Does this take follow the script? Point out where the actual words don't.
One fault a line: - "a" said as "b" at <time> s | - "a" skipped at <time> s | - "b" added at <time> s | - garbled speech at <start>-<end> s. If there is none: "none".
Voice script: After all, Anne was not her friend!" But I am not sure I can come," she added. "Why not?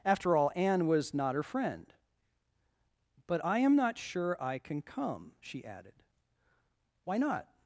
none